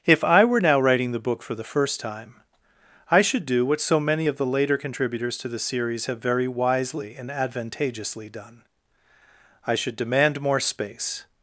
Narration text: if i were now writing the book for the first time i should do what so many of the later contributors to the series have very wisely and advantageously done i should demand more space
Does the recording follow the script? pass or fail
pass